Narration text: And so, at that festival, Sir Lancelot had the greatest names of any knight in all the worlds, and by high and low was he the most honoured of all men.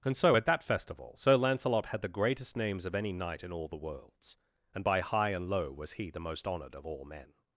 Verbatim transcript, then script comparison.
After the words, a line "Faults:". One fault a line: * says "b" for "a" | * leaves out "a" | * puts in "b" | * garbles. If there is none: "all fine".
And so, at that festival, Sir Lancelot had the greatest names of any knight in all the worlds, and by high and low was he the most honoured of all men.
Faults:
all fine